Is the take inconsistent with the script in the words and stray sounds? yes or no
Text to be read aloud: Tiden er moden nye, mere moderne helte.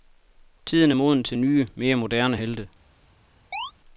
yes